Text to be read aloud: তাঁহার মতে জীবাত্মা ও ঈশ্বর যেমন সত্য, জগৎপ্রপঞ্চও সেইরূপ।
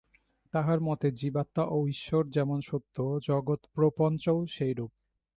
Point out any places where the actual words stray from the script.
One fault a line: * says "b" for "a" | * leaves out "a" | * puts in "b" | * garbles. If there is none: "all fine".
all fine